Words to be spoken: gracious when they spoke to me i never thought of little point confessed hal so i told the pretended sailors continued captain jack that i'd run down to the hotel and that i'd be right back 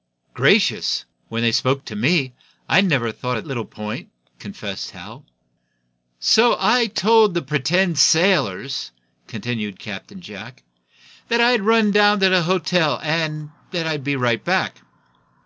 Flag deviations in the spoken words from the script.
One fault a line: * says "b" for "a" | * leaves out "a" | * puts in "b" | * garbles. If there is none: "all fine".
all fine